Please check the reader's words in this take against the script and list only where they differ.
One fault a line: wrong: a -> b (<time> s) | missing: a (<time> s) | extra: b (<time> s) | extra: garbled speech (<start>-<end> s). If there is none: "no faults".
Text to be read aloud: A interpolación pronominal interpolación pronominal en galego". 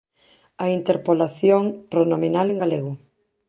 missing: interpolación pronominal (2.5 s)